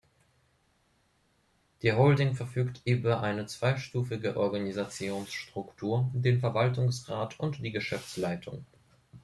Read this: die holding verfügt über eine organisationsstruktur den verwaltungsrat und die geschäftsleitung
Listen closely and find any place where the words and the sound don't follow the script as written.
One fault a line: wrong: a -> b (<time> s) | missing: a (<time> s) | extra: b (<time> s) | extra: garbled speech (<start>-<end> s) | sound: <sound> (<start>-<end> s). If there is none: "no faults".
extra: zweistufige (3.4 s)